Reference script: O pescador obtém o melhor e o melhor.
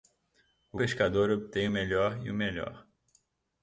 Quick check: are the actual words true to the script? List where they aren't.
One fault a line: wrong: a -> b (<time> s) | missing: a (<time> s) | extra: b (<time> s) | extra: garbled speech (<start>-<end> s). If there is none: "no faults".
no faults